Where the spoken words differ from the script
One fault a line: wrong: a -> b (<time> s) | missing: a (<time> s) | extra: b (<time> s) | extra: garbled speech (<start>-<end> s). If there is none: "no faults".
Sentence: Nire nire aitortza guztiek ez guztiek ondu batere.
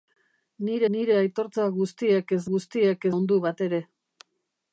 no faults